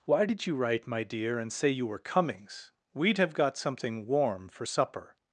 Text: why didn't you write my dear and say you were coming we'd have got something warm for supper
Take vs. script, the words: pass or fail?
fail